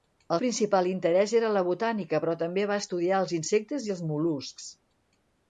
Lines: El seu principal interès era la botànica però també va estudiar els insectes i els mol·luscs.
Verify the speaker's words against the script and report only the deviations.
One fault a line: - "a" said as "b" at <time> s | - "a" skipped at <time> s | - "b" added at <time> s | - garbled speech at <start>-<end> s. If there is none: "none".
- "seu" skipped at 0.4 s